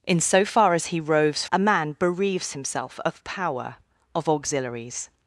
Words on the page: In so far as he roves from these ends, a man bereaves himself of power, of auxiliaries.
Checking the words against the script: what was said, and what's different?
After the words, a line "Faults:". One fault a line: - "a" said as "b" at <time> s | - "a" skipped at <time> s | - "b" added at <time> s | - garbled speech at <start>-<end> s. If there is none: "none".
In so far as he roves a man bereaves himself of power, of auxiliaries.
Faults:
- "from these ends" skipped at 1.4 s